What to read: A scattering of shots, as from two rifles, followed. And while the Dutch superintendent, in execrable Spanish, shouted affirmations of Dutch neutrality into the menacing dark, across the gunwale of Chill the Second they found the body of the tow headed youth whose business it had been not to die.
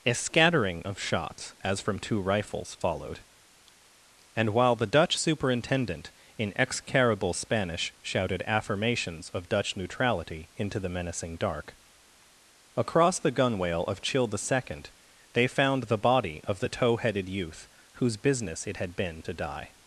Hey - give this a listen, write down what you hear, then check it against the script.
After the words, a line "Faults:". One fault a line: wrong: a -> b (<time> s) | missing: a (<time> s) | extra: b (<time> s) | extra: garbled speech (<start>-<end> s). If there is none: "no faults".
A scattering of shots, as from two rifles, followed. And while the Dutch superintendent, in execrable Spanish, shouted affirmations of Dutch neutrality into the menacing dark, across the gunwale of Chill the Second they found the body of the tow headed youth whose business it had been to die.
Faults:
missing: not (19.2 s)